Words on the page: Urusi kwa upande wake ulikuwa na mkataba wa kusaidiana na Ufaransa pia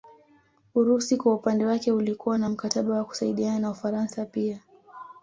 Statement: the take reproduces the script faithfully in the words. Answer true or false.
true